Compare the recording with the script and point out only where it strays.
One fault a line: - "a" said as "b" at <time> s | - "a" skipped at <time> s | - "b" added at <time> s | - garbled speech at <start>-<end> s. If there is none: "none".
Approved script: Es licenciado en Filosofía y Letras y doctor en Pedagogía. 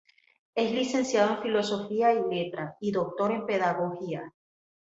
none